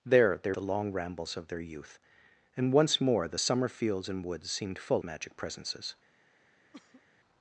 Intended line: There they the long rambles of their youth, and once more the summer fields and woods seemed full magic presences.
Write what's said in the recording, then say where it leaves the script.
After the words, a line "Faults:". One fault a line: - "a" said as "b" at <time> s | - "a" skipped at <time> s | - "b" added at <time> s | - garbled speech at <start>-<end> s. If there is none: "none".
There they the long rambles of their youth, and once more the summer fields and woods seemed full magic presences.
Faults:
none